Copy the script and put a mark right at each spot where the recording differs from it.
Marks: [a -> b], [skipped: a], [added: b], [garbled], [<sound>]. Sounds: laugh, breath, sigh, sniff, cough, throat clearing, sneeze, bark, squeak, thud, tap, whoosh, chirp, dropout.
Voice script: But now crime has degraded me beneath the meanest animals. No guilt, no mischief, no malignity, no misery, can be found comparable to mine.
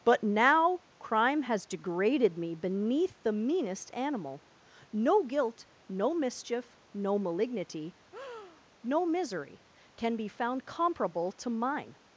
But now crime has degraded me beneath the meanest [animals. -> animal] No guilt, no mischief, no malignity, [breath] no misery, can be found comparable to mine.